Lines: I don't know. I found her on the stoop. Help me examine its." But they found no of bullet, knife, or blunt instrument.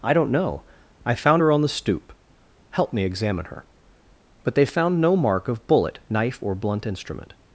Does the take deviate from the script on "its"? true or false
true